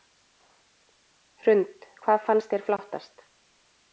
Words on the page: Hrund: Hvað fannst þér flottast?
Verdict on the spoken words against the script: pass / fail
pass